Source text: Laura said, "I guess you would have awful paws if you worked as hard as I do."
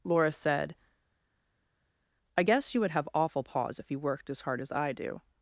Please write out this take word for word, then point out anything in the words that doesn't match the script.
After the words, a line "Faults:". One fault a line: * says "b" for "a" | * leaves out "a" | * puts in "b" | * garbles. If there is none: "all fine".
Laura said, "I guess you would have awful paws if you worked as hard as I do."
Faults:
all fine